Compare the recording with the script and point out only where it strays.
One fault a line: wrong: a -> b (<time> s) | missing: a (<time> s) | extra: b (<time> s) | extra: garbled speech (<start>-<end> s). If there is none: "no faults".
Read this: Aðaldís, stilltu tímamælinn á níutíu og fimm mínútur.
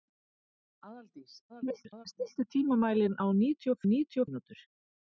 extra: garbled speech (1.5-2.1 s)
wrong: fimm -> níutíu (3.9 s)